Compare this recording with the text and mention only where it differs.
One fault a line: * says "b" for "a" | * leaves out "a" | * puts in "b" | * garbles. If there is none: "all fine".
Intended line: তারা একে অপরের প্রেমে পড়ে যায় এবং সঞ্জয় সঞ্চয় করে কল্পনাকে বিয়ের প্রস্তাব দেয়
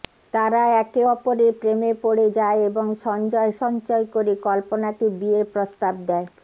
all fine